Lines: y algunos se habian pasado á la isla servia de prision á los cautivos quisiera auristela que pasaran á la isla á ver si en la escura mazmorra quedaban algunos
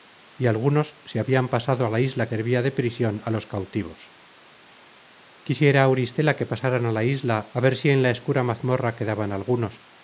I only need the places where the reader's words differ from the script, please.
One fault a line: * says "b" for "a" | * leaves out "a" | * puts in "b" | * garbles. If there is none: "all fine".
all fine